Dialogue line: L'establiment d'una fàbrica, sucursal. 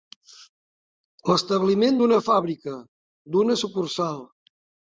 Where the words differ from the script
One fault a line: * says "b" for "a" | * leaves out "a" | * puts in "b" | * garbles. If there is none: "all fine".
* puts in "d'una"